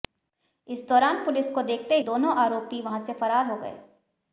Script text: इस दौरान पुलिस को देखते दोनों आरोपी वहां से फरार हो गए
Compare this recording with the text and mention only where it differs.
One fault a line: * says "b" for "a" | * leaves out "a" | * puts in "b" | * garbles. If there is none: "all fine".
all fine